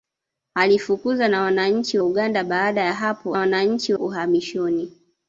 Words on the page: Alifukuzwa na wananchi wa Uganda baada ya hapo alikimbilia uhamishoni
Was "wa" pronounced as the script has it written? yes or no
no